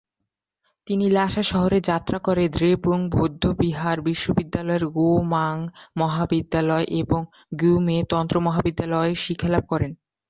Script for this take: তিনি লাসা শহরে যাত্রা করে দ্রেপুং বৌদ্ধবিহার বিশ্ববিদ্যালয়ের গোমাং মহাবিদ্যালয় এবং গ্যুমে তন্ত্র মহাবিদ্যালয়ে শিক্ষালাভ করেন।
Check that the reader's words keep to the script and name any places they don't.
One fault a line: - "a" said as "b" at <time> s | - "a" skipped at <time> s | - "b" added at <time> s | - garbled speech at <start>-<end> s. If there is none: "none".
none